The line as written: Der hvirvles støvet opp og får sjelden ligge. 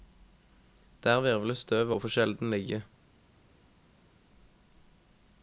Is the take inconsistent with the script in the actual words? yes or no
yes